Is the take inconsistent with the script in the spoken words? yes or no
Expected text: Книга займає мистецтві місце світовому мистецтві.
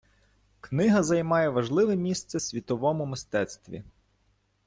yes